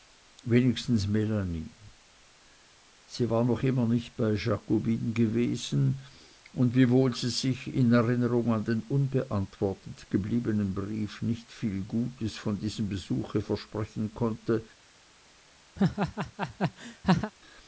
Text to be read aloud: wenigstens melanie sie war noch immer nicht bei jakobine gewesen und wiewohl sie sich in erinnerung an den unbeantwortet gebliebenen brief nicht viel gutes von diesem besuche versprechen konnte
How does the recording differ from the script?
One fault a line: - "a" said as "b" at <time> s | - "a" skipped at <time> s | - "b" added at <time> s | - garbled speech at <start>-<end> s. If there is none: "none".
none